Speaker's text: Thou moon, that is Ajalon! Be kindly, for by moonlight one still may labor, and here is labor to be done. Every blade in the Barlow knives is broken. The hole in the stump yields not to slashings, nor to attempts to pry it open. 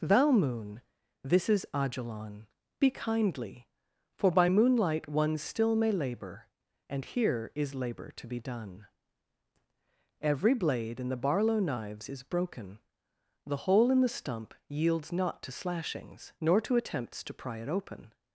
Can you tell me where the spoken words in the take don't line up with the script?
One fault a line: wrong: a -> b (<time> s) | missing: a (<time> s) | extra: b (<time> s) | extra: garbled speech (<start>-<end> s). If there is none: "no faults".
wrong: that -> this (1.2 s)